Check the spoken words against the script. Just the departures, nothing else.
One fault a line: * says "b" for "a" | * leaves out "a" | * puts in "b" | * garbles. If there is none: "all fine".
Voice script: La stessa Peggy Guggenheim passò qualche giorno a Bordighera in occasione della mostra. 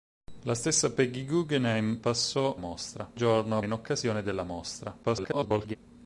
* says "mostra" for "qualche"
* leaves out "Bordighera"
* garbles